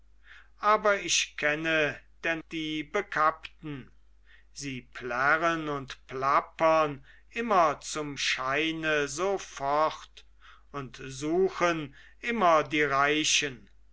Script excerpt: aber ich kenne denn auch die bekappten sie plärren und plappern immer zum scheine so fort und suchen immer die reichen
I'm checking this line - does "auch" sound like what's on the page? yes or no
no